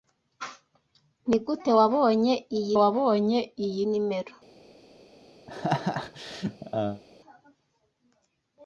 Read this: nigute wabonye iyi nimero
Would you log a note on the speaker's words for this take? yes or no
yes